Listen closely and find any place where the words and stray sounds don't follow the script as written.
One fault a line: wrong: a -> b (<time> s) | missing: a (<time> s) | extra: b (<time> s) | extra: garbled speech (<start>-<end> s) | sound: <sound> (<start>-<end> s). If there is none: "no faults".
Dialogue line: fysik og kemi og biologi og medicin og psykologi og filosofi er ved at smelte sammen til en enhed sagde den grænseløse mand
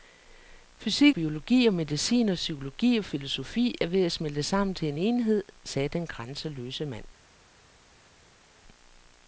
missing: og kemi og (1.1 s)